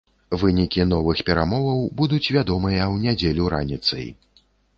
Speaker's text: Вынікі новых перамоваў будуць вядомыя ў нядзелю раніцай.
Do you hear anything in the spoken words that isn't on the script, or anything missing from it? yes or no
no